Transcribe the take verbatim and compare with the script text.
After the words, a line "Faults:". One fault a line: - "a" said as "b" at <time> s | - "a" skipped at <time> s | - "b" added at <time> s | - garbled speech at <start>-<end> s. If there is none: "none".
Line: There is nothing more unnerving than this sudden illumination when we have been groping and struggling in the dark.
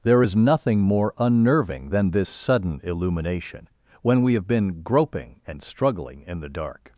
There is nothing more unnerving than this sudden illumination when we have been groping and struggling in the dark.
Faults:
none